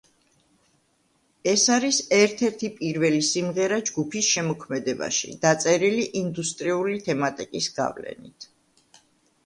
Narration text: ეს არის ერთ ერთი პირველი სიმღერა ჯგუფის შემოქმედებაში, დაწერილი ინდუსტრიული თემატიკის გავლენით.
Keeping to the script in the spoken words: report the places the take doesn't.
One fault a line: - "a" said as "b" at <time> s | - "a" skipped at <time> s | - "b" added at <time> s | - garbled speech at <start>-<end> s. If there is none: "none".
none